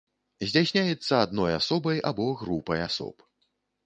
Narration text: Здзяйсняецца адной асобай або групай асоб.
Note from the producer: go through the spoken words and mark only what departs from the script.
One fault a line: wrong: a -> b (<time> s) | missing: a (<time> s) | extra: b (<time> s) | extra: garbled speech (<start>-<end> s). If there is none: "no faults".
no faults